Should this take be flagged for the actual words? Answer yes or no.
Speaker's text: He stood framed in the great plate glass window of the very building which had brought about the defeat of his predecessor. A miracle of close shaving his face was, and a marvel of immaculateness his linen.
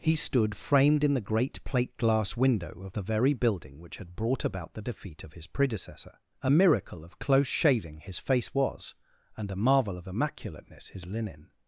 no